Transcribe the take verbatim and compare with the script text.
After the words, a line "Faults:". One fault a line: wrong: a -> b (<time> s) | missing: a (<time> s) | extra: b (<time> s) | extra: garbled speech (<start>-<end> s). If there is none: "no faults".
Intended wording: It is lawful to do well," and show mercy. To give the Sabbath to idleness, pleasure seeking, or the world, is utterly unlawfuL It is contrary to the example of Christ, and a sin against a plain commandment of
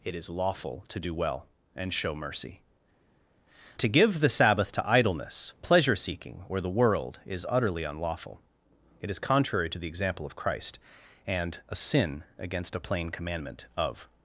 It is lawful to do well," and show mercy. To give the Sabbath to idleness, pleasure seeking, or the world, is utterly unlawfuL It is contrary to the example of Christ, and a sin against a plain commandment of
Faults:
no faults